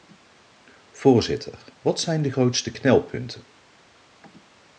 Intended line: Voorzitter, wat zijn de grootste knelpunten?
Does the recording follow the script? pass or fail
pass